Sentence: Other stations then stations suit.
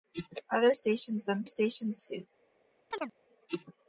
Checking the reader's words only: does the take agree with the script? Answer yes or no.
yes